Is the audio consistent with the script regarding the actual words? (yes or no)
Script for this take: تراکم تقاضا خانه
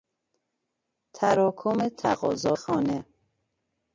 yes